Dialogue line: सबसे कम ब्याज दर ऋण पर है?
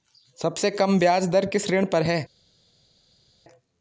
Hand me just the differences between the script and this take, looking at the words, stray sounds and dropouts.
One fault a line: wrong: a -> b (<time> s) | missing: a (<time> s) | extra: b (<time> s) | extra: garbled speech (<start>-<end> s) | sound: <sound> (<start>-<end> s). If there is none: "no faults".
extra: किस (1.4 s)